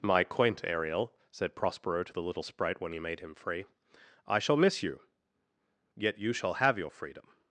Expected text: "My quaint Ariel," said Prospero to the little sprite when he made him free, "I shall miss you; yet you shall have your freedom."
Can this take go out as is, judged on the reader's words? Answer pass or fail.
pass